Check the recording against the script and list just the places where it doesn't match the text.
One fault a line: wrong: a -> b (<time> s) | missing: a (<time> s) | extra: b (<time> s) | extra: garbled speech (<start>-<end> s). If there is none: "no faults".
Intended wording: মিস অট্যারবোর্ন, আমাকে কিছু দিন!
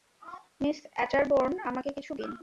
no faults